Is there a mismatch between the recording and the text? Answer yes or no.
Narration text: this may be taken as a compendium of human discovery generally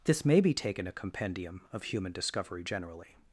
yes